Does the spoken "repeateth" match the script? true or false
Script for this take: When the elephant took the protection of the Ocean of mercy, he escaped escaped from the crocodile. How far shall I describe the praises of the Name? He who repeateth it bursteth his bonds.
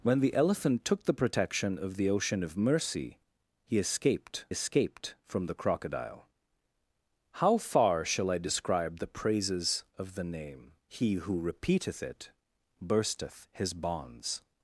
true